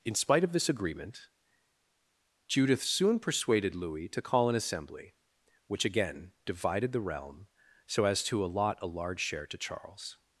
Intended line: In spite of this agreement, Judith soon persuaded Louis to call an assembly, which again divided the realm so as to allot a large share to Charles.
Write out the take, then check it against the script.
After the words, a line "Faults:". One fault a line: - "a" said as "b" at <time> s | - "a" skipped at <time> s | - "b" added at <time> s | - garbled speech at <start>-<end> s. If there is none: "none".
In spite of this agreement, Judith soon persuaded Louis to call an assembly, which again divided the realm so as to allot a large share to Charles.
Faults:
none